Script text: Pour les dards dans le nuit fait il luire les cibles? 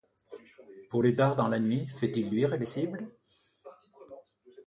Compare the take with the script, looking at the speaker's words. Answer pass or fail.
fail